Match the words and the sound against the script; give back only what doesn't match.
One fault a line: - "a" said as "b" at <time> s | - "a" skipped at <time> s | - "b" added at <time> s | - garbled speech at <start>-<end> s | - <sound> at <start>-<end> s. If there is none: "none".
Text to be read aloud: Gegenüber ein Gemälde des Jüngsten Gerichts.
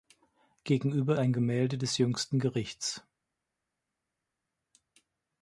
none